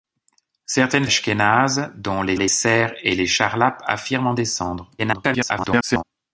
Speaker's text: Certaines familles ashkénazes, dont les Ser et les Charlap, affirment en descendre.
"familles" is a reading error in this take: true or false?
true